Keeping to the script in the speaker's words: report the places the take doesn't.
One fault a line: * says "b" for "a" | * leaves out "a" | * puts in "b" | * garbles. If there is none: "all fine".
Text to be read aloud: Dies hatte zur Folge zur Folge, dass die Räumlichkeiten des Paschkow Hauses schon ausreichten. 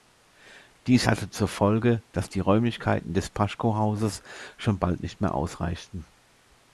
* leaves out "zur Folge"
* puts in "bald nicht mehr"